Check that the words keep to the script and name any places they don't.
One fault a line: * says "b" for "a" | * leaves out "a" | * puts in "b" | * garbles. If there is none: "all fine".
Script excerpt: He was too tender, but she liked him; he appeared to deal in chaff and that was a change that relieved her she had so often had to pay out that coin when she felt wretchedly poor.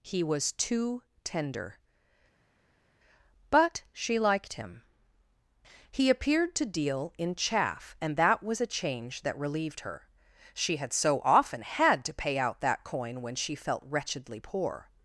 all fine